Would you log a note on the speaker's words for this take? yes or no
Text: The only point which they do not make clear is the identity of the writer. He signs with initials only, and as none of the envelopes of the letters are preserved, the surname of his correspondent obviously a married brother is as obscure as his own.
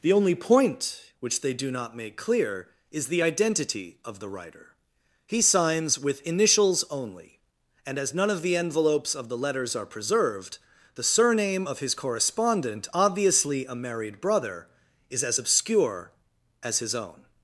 no